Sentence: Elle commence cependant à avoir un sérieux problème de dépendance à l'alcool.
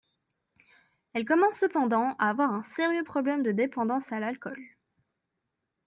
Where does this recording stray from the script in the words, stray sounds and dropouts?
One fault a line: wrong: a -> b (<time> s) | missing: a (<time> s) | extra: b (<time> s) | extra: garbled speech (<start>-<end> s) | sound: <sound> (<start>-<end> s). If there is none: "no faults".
no faults